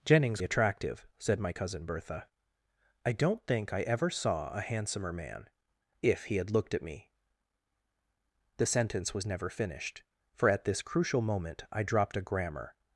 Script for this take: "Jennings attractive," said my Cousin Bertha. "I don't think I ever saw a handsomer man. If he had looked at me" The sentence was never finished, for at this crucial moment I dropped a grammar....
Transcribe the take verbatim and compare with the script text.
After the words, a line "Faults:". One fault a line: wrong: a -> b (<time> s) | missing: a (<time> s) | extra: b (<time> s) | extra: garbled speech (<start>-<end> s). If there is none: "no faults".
"Jennings attractive," said my Cousin Bertha. "I don't think I ever saw a handsomer man. If he had looked at me" The sentence was never finished, for at this crucial moment I dropped a grammar....
Faults:
no faults